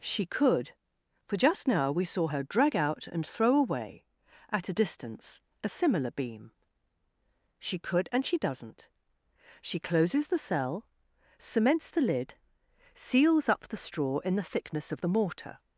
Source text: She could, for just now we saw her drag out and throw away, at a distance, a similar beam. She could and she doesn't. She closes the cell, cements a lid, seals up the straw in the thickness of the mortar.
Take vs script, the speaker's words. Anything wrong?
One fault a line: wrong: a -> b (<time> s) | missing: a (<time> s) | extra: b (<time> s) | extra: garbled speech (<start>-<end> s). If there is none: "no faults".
wrong: a -> the (11.9 s)